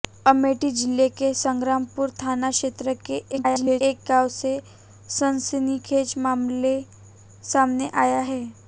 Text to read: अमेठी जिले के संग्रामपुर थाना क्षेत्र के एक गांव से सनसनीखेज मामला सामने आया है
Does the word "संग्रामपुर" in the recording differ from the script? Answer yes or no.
no